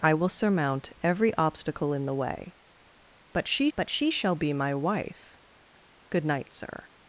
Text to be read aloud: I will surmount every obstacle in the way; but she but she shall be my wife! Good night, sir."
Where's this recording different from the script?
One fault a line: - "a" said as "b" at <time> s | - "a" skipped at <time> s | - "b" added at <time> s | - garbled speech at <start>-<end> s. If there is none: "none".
none